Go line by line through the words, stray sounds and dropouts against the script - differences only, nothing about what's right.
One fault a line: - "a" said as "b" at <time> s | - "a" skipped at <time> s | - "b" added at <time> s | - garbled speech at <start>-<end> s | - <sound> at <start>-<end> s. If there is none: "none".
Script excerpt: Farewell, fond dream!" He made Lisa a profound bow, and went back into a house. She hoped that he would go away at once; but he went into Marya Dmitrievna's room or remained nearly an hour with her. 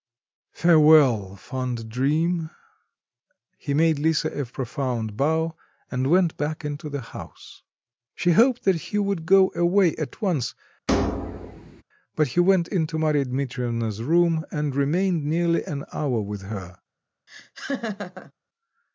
- "a" said as "the" at 6.9 s
- thud at 10.9-11.8 s
- "or" said as "and" at 14.5 s
- laugh at 17.3-18.3 s